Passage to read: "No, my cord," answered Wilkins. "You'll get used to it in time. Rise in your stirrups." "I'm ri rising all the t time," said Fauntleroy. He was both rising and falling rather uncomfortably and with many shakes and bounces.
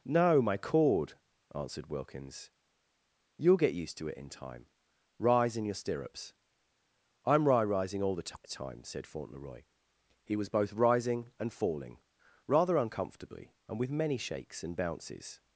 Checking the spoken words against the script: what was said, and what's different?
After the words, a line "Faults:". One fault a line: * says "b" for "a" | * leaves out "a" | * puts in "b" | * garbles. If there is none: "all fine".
"No, my cord," answered Wilkins. "You'll get used to it in time. Rise in your stirrups." "I'm ri rising all the t time," said Fauntleroy. He was both rising and falling rather uncomfortably and with many shakes and bounces.
Faults:
all fine